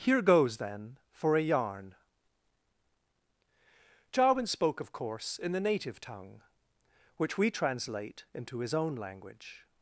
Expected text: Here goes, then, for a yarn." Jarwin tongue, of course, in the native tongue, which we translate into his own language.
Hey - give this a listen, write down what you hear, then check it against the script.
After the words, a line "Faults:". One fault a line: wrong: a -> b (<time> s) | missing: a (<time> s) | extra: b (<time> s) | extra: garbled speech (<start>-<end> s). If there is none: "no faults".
Here goes, then, for a yarn." Jarwin spoke, of course, in the native tongue, which we translate into his own language.
Faults:
wrong: tongue -> spoke (4.5 s)